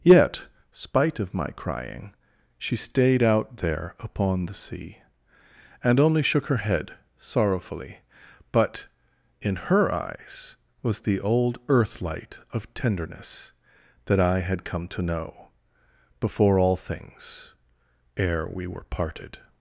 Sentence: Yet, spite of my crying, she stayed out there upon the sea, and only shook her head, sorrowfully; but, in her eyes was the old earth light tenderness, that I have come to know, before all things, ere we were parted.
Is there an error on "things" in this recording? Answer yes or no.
no